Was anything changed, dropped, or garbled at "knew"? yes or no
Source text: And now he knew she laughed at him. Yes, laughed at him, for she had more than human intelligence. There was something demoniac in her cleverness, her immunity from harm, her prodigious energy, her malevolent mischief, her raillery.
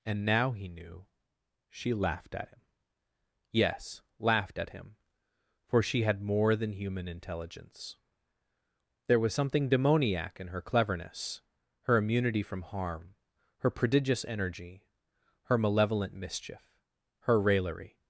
no